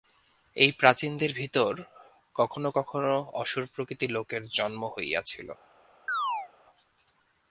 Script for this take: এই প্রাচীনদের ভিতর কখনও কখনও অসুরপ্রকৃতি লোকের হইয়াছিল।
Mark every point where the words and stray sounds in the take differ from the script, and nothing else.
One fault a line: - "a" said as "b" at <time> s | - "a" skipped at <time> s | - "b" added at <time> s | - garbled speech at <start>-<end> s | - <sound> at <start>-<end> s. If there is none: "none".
- "জন্ম" added at 4.5 s
- chirp at 6.1-6.5 s